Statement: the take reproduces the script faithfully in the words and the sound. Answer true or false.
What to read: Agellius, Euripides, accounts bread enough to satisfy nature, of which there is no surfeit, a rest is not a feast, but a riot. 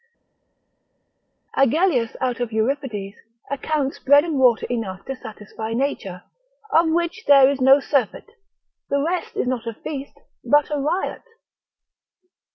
false